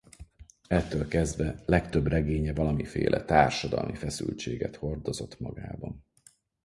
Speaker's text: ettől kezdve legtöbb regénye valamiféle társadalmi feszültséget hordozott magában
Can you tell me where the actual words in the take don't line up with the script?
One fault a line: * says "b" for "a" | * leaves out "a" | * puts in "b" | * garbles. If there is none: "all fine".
all fine